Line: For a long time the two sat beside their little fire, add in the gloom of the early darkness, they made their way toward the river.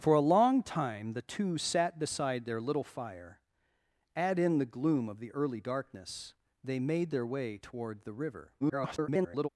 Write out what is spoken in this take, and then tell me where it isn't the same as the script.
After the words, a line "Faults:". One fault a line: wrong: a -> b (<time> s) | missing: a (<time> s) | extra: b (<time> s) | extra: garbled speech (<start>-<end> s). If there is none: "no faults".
For a long time the two sat beside their little fire, add in the gloom of the early darkness, they made their way toward the river. [garbled]
Faults:
extra: garbled speech (8.6-9.5 s)